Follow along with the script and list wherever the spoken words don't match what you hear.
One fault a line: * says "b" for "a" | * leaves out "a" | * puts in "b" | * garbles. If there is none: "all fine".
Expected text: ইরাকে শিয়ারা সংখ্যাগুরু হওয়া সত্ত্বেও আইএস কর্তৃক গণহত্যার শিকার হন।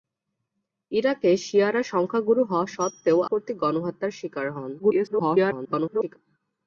* leaves out "আইএস"
* garbles